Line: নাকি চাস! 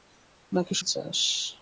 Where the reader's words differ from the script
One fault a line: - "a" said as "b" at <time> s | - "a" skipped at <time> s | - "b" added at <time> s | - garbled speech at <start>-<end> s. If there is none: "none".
none